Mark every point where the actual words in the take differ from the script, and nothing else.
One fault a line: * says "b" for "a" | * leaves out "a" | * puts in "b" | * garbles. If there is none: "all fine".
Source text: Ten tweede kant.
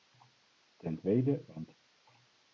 all fine